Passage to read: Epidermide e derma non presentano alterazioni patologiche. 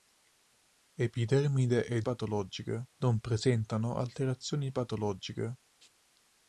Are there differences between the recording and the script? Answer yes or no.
yes